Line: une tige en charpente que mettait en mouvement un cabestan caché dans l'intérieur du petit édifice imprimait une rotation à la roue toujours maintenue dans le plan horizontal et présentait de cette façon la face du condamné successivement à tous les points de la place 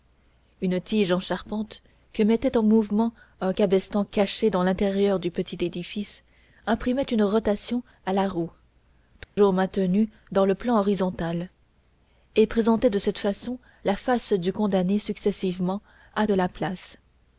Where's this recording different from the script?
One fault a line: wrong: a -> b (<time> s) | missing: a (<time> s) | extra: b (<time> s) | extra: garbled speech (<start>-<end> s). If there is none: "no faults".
missing: tous les points (16.3 s)